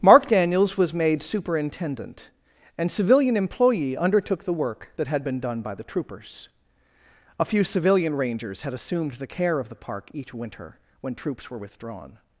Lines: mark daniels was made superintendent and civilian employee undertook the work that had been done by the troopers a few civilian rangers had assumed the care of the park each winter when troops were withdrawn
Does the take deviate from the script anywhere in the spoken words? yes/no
no